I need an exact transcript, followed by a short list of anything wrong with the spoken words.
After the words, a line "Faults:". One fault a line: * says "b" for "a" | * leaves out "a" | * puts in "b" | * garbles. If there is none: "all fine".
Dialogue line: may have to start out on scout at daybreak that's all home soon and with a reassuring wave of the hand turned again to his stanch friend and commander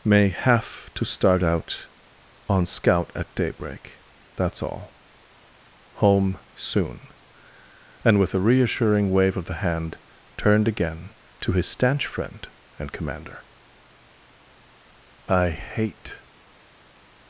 may have to start out on scout at daybreak that's all home soon and with a reassuring wave of the hand turned again to his stanch friend and commander i hate
Faults:
* puts in "i hate"